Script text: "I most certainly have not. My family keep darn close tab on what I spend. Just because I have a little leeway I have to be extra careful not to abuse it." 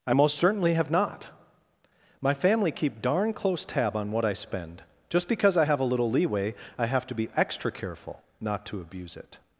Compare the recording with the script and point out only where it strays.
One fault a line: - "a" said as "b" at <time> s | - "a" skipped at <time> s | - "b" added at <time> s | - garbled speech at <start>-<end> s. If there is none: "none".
none